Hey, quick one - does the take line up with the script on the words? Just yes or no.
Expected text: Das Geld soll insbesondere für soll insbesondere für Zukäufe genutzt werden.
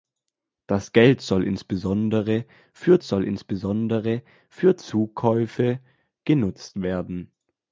yes